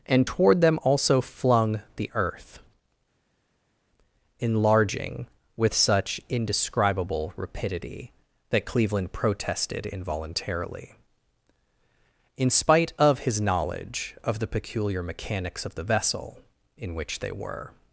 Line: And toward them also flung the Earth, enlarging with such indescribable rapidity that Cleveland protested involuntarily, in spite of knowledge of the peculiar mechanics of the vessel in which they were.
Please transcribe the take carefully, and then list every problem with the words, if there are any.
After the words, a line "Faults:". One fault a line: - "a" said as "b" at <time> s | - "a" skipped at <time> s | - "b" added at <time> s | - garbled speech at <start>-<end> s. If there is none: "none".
And toward them also flung the Earth, enlarging with such indescribable rapidity that Cleveland protested involuntarily, in spite of his knowledge of the peculiar mechanics of the vessel in which they were.
Faults:
- "his" added at 13.2 s